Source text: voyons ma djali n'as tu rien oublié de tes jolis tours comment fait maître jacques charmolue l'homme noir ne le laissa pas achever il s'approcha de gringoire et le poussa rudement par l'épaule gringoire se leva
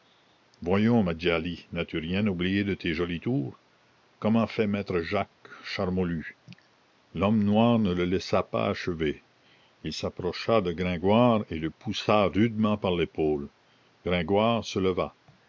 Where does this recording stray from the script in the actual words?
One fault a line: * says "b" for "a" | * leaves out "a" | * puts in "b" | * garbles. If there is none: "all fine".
all fine